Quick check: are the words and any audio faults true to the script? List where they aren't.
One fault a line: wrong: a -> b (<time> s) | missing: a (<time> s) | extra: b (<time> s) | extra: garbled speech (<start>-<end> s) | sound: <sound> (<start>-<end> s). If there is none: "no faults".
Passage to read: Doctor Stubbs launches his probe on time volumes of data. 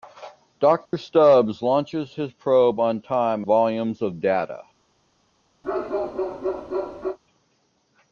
sound: dropout (0.9-0.9 s)
sound: bark (5.6-7.2 s)